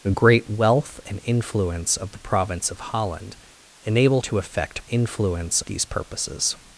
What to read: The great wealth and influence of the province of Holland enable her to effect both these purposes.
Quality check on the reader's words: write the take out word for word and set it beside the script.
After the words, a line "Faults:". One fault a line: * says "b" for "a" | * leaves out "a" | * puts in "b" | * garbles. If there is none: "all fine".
The great wealth and influence of the province of Holland enable to effect influence these purposes.
Faults:
* leaves out "her"
* says "influence" for "both"